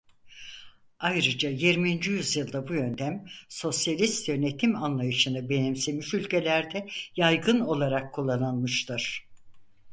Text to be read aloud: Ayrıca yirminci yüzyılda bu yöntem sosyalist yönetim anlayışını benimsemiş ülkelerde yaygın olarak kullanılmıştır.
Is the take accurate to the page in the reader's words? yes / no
yes